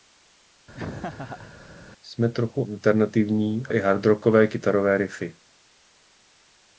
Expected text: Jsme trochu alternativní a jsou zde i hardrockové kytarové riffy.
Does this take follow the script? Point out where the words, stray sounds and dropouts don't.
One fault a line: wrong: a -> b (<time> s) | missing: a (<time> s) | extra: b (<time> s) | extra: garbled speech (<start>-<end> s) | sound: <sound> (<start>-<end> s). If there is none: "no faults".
sound: laugh (0.7-1.5 s)
missing: jsou zde (3.7 s)